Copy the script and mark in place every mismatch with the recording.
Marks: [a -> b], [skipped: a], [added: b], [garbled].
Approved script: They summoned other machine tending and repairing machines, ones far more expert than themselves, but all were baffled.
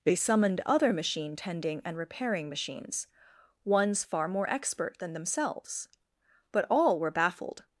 They summoned other machine tending and repairing machines, ones far more expert than themselves, but all were baffled.